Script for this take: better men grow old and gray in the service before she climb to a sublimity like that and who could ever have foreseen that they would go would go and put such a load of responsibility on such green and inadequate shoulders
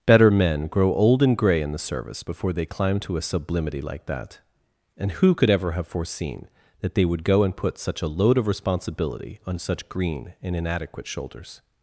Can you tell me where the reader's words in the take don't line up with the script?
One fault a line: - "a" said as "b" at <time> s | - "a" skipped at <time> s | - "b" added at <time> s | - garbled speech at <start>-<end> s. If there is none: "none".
- "she" said as "they" at 2.5 s
- "would go" skipped at 7.4 s